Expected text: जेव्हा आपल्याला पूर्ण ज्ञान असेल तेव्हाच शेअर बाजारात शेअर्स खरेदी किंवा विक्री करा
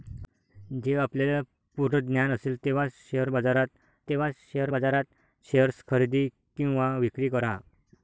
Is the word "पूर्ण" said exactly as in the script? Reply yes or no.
yes